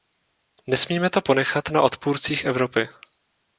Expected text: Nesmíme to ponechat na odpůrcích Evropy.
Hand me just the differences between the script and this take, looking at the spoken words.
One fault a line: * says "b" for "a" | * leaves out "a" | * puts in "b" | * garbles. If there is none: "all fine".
all fine